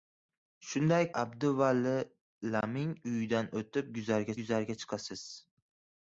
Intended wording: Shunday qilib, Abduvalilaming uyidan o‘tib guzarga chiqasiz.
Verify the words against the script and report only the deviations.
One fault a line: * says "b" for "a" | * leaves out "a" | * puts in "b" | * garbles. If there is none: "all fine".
* leaves out "qilib"
* puts in "guzarga"